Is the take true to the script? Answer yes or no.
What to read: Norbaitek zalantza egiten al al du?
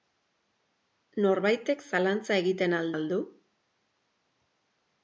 yes